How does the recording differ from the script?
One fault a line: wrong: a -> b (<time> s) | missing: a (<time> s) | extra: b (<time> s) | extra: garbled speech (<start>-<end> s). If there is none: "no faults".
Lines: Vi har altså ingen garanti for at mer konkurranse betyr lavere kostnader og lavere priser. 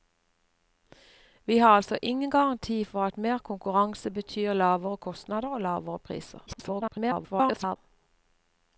extra: garbled speech (6.5-7.8 s)